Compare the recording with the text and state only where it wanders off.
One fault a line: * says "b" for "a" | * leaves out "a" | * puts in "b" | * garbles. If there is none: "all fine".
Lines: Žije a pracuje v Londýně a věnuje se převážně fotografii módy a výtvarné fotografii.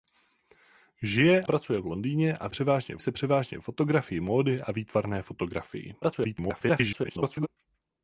* leaves out "a"
* says "převážně" for "věnuje"
* garbles